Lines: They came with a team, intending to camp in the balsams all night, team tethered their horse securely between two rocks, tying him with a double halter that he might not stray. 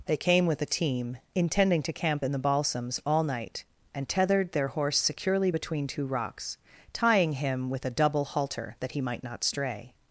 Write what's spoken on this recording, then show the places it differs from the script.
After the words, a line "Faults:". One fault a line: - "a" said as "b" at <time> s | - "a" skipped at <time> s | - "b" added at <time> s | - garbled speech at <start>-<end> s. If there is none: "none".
They came with a team, intending to camp in the balsams all night, and tethered their horse securely between two rocks, tying him with a double halter that he might not stray.
Faults:
- "team" said as "and" at 3.9 s